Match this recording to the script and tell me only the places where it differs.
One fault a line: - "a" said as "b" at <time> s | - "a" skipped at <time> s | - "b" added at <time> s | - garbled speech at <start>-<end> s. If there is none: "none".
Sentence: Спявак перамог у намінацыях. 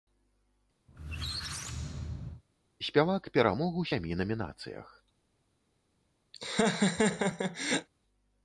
- "сямі" added at 3.9 s